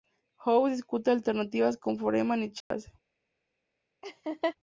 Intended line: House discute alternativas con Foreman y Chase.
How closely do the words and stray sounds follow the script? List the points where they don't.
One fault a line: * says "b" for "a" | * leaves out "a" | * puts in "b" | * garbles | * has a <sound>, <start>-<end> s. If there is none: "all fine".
* has a dropout, 2.6-2.7 s
* has a laugh, 4.0-4.6 s